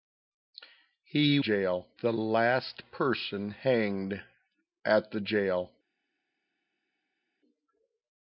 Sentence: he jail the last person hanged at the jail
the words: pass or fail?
pass